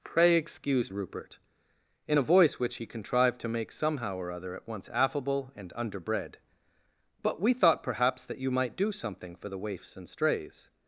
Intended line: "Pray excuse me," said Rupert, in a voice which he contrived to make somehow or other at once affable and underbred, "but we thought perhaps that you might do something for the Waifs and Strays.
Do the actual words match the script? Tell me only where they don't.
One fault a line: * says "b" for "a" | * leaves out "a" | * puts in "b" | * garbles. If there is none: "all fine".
* leaves out "me said"